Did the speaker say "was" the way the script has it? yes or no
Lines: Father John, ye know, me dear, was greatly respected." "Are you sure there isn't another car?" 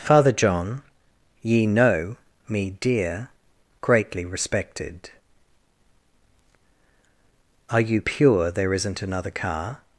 no